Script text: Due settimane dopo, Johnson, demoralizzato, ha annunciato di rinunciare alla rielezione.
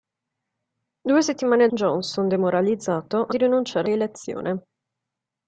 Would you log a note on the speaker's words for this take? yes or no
yes